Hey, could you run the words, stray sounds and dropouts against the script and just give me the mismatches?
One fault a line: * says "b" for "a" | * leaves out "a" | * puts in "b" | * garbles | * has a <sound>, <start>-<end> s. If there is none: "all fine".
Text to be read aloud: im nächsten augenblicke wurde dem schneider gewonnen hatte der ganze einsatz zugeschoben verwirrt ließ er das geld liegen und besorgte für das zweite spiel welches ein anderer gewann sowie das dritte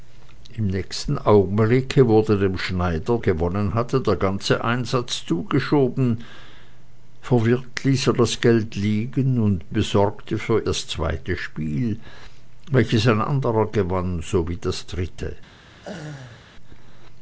* has a laugh, 15.7-16.5 s